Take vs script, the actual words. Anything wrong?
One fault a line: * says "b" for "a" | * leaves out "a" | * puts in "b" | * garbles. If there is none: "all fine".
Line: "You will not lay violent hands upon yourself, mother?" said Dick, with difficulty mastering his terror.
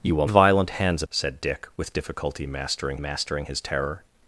* leaves out "not lay"
* leaves out "upon yourself mother"
* puts in "mastering"